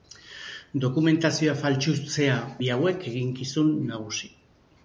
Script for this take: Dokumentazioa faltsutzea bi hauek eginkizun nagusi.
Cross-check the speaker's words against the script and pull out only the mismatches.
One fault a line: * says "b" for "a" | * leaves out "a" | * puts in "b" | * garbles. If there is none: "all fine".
all fine